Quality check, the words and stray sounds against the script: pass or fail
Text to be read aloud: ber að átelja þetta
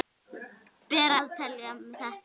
fail